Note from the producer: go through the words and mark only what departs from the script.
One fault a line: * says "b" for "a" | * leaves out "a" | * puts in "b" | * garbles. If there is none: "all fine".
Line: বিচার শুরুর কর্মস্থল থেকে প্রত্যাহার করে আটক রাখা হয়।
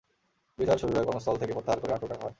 all fine